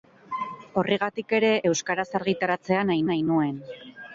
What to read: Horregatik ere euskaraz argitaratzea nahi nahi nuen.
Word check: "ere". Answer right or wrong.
right